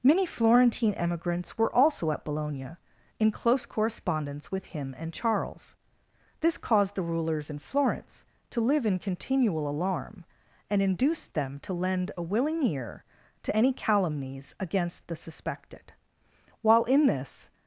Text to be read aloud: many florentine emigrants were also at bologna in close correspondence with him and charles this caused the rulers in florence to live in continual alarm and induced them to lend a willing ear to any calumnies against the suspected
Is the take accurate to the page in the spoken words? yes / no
no